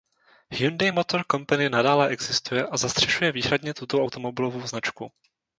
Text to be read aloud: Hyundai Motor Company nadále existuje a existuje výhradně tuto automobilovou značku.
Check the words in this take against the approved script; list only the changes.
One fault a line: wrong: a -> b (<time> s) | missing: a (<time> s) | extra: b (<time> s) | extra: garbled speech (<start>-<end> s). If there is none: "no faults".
wrong: existuje -> zastřešuje (2.8 s)